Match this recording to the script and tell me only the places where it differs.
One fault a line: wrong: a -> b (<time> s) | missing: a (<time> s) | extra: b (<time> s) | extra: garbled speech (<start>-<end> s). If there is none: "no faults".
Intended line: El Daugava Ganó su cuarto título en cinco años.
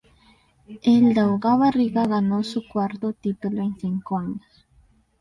extra: Riga (1.7 s)